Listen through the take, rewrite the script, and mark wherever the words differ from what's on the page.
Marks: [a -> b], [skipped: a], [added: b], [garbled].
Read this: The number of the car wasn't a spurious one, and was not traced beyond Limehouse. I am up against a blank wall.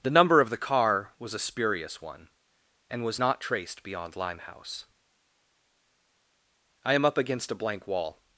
The number of the car [wasn't -> was] a spurious one, and was not traced beyond Limehouse. I am up against a blank wall.